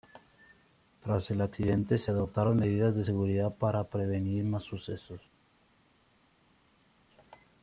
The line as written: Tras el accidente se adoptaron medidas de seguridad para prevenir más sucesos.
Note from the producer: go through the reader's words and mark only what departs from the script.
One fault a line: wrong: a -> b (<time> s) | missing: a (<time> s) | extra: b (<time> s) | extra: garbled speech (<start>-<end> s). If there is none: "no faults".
no faults